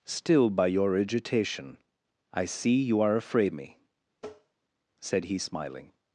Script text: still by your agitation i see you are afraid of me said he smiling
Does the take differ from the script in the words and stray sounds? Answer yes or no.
yes